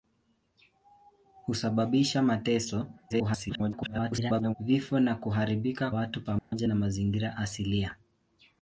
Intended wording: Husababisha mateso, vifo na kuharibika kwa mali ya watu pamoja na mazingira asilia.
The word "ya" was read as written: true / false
false